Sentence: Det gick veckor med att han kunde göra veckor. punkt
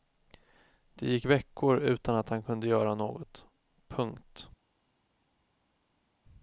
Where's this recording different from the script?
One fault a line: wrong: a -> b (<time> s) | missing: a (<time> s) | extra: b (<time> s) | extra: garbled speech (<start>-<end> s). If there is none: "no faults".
wrong: med -> utan (1.8 s)
wrong: veckor -> något (2.9 s)